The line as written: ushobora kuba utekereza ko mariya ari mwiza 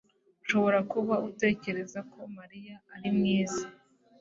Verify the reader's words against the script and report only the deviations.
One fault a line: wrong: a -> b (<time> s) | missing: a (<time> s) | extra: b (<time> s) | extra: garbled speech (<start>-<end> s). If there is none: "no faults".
no faults